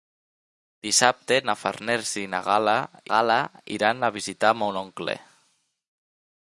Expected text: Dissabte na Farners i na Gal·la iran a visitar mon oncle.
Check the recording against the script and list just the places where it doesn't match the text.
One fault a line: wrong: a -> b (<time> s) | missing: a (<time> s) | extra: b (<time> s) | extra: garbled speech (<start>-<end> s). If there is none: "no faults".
extra: Gal·la (3.1 s)